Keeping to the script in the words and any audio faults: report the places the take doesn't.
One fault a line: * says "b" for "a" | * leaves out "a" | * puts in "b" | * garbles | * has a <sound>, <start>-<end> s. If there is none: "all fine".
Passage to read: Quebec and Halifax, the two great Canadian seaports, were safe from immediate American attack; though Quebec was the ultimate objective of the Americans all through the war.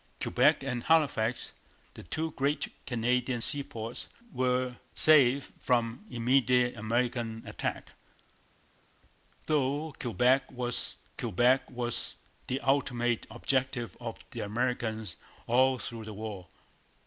* puts in "Quebec was"